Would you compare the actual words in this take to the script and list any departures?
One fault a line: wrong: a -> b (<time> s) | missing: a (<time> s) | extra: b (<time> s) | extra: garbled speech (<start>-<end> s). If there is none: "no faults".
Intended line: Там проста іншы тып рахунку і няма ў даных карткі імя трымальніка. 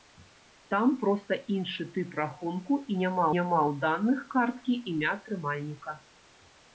extra: няма (3.4 s)